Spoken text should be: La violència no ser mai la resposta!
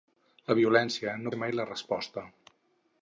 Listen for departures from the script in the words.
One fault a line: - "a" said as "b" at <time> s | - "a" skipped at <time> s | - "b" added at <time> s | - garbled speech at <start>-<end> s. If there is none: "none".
none